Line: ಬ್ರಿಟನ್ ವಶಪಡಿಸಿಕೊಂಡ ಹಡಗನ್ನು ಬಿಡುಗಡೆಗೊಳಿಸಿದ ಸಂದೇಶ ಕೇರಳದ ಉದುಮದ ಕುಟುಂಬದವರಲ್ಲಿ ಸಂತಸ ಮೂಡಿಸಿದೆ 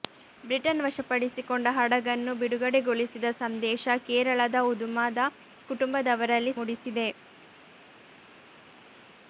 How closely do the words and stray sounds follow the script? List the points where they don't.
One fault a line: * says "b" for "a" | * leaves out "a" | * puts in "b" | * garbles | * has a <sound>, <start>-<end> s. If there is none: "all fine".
* leaves out "ಸಂತಸ"